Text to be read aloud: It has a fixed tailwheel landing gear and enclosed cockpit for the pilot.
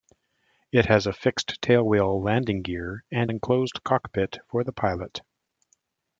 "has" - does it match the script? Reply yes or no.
yes